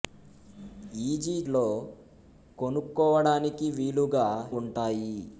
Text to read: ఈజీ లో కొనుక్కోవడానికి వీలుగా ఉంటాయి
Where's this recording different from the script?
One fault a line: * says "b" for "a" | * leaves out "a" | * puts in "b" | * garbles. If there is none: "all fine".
all fine